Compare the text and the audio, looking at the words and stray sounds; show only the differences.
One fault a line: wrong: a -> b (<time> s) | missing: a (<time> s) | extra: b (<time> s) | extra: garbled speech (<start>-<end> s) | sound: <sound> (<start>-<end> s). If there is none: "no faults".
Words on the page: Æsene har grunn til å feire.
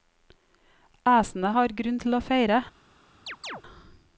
sound: chirp (3.3-3.6 s)